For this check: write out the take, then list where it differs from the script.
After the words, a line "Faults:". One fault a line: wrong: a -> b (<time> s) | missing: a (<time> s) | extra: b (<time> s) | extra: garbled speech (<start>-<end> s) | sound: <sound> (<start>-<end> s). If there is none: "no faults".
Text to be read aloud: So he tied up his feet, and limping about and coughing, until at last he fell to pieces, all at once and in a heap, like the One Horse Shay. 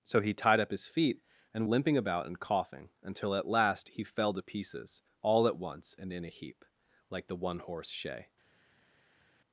So he tied up his feet, and limping about and coughing, until at last he fell to pieces, all at once and in a heap, like the One Horse Shay.
Faults:
no faults